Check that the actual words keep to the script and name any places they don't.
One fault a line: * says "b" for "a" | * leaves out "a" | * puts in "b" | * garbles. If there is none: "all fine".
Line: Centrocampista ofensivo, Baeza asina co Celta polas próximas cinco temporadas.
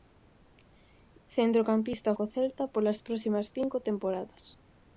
* leaves out "ofensivo Baeza asina"